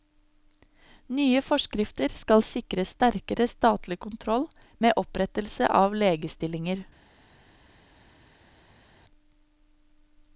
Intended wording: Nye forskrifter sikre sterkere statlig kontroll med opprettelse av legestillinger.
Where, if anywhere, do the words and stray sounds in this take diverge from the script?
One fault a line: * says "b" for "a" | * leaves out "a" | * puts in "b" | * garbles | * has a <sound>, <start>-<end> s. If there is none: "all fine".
* puts in "skal"